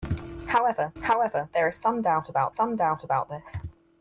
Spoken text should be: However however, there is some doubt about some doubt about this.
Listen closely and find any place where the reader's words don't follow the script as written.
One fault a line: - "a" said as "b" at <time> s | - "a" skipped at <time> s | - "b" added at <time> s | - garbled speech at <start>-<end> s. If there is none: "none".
none